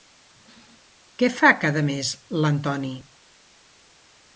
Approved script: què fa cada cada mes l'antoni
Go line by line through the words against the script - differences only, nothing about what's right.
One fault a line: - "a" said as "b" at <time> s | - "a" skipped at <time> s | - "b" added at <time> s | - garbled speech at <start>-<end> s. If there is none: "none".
- "cada" skipped at 1.9 s